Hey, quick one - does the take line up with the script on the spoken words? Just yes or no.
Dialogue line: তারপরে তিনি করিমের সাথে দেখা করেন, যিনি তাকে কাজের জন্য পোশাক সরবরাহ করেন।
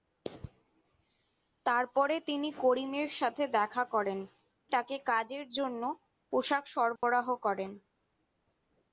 no